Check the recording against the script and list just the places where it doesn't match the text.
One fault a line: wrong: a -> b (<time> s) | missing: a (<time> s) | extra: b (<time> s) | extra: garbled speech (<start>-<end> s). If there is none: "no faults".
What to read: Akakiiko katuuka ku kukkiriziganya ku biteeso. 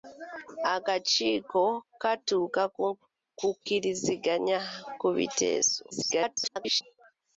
extra: garbled speech (5.9-6.8 s)